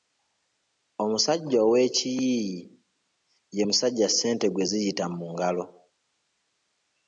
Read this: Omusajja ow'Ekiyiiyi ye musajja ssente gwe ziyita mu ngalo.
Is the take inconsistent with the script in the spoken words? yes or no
no